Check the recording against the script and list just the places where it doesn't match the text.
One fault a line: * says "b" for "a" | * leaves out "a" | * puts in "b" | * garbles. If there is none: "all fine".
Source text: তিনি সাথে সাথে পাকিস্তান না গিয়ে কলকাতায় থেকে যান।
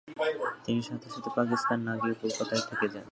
all fine